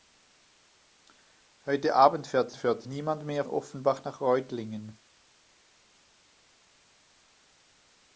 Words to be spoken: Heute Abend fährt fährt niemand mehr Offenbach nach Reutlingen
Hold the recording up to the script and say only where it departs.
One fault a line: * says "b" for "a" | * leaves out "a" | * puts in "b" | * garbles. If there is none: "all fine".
all fine